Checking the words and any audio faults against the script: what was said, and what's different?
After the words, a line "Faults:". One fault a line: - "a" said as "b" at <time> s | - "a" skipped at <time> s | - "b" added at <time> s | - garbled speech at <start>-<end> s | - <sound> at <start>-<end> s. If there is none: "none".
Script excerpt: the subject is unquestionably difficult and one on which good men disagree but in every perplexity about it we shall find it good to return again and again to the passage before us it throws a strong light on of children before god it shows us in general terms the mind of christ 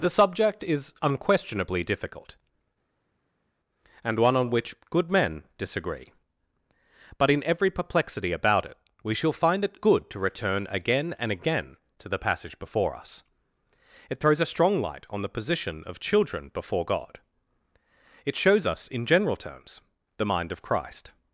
the subject is unquestionably difficult and one on which good men disagree but in every perplexity about it we shall find it good to return again and again to the passage before us it throws a strong light on the position of children before god it shows us in general terms the mind of christ
Faults:
- "the position" added at 15.2 s